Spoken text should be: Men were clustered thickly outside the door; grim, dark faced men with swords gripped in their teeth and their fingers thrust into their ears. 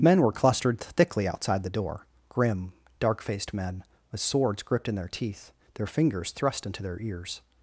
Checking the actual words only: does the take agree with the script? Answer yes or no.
no